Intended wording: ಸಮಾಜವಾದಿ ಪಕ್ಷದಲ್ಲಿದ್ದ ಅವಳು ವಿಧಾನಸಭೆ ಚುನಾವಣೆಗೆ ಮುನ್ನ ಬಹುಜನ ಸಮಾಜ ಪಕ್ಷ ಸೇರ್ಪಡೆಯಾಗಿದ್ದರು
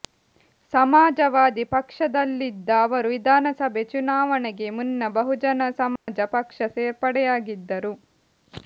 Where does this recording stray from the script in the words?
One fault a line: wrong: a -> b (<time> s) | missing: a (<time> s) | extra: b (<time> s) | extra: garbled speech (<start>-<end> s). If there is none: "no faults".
wrong: ಅವಳು -> ಅವರು (2.9 s)